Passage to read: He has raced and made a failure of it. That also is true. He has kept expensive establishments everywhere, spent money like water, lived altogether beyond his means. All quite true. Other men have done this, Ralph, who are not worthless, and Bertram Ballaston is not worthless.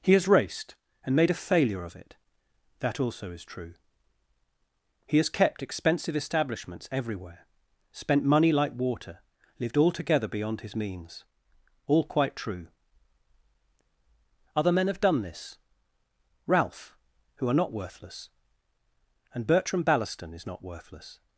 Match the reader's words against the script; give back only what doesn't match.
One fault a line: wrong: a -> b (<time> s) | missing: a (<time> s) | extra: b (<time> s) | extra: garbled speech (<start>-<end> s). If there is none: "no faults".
no faults